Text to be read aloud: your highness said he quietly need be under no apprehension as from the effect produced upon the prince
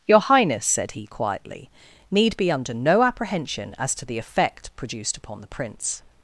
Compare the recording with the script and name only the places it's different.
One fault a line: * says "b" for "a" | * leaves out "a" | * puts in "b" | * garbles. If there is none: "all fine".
* says "to" for "from"